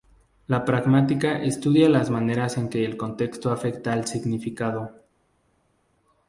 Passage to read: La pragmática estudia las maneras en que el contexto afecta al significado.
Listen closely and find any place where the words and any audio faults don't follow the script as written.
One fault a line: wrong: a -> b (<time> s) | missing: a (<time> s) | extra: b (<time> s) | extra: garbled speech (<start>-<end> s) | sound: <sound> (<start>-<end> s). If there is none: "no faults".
no faults